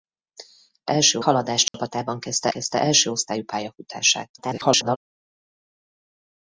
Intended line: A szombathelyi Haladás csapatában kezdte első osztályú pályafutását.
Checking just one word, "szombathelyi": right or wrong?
wrong